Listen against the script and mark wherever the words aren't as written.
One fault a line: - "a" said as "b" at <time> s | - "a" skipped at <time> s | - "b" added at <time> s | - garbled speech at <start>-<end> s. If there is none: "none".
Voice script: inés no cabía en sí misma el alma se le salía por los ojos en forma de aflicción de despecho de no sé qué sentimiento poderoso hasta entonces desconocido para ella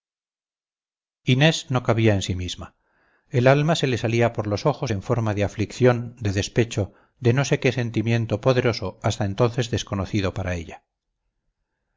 none